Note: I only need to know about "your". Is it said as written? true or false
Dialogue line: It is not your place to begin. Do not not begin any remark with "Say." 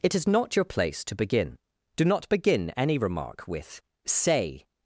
true